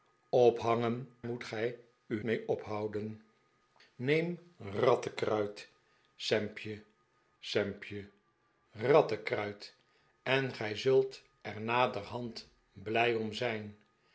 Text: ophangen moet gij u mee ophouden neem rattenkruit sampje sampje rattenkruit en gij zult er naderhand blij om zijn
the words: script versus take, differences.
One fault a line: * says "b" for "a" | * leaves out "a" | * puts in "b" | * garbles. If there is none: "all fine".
all fine